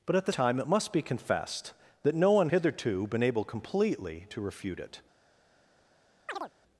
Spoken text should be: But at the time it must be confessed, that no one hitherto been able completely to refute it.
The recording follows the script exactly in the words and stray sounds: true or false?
false